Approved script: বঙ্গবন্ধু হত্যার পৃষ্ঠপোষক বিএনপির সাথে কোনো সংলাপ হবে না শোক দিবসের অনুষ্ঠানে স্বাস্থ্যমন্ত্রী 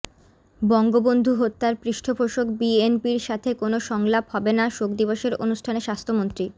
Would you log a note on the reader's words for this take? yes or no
no